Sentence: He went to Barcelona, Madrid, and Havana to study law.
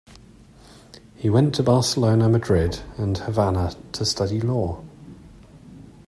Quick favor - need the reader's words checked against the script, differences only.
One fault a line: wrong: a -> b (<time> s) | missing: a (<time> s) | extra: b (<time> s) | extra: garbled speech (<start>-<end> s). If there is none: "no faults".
no faults